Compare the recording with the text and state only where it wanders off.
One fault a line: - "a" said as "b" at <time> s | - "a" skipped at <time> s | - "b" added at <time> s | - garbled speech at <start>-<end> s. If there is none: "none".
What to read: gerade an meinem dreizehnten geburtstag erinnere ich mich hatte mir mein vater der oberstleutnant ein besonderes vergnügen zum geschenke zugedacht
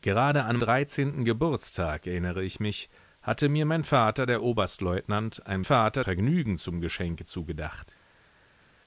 - "meinem" skipped at 0.6 s
- "besonderes" said as "vater" at 5.6 s